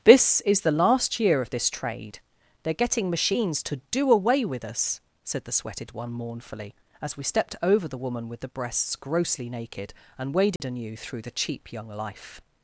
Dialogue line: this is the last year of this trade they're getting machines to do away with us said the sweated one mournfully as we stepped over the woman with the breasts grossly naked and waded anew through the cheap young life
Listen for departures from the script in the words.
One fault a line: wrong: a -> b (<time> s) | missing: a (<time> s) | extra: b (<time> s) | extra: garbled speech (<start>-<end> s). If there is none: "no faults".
no faults